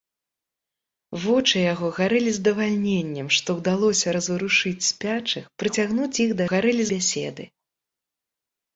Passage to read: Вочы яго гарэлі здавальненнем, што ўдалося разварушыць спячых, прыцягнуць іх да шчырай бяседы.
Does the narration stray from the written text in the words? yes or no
yes